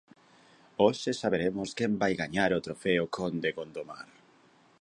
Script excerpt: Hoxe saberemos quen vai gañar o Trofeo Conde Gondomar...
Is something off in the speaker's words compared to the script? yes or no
no